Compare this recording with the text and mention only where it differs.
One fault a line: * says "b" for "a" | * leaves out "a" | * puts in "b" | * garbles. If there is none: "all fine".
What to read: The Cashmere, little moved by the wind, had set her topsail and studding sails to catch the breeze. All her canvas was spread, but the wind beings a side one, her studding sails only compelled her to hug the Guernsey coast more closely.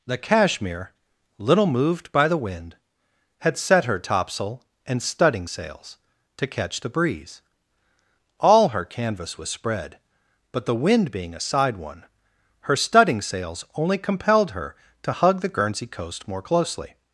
* says "being" for "beings"